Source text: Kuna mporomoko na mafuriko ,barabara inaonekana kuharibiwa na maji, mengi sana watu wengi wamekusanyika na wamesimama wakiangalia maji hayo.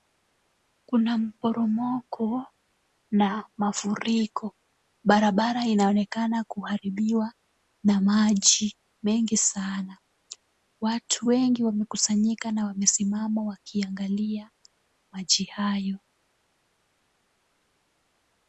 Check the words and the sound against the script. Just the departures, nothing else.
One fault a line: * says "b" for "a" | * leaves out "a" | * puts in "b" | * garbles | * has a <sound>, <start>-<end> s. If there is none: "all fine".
all fine